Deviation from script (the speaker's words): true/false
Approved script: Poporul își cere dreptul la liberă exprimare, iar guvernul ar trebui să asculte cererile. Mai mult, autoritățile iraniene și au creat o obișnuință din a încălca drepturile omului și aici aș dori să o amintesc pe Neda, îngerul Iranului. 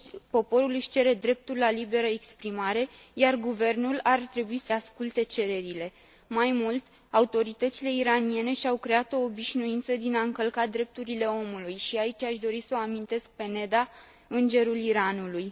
false